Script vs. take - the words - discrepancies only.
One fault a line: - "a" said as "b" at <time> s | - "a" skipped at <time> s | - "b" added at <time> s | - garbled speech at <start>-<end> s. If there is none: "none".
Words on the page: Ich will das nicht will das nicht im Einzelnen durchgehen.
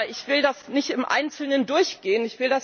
- "will das nicht" skipped at 0.9 s